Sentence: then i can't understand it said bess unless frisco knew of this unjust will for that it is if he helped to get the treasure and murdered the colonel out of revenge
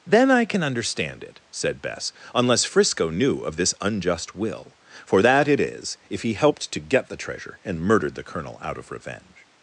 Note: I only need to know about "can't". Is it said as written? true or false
false